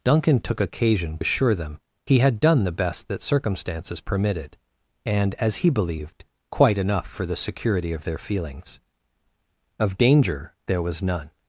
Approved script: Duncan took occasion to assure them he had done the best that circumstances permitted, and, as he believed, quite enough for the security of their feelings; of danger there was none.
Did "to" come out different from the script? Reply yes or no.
yes